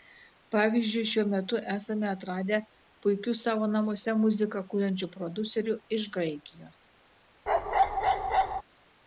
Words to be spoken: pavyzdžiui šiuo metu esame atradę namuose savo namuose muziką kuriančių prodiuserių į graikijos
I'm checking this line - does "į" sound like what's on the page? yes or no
no